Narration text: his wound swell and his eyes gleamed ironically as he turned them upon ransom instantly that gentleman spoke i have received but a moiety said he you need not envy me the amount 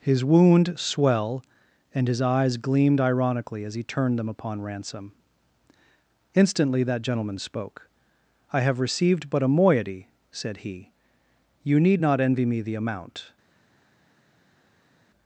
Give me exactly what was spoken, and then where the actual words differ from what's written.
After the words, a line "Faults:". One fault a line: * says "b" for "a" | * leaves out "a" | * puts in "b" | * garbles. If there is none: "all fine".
his wound swell and his eyes gleamed ironically as he turned them upon ransom instantly that gentleman spoke i have received but a moiety said he you need not envy me the amount
Faults:
all fine